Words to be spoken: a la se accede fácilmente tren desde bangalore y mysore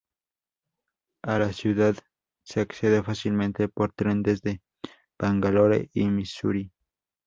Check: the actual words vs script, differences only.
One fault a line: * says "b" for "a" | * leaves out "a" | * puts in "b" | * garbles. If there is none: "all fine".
* puts in "ciudad"
* puts in "por"